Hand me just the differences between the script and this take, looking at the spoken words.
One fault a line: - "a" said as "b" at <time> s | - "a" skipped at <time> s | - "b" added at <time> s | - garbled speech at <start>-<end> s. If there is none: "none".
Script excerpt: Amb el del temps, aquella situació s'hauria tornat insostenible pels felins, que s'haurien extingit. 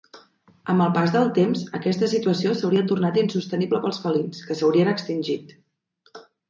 - "pas" added at 0.9 s
- "aquella" said as "aquesta" at 1.8 s